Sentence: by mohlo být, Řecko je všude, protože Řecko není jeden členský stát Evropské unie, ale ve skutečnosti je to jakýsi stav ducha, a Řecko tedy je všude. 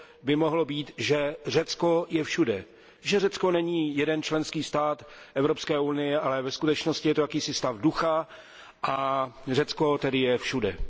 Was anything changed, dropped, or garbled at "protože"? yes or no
yes